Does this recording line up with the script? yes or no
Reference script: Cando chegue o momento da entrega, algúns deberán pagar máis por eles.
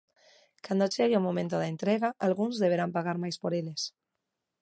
yes